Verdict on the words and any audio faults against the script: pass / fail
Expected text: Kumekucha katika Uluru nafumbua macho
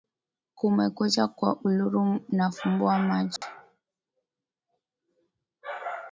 fail